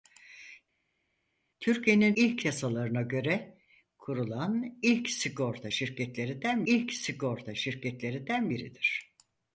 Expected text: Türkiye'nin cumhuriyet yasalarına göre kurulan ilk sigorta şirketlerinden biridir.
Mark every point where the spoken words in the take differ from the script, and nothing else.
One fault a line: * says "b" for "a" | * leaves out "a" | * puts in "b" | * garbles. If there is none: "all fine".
* says "ilk" for "cumhuriyet"
* puts in "ilk sigorta şirketlerinden"